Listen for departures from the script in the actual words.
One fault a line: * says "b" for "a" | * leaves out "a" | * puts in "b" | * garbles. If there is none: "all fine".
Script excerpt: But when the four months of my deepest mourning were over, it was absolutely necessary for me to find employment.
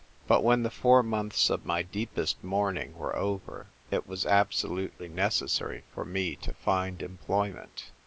all fine